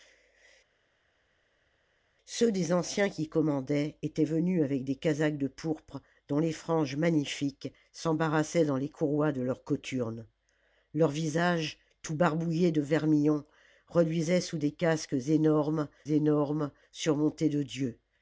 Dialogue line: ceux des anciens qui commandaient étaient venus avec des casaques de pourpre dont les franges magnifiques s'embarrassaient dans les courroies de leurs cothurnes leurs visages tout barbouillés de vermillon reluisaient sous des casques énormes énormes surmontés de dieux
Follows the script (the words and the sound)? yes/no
yes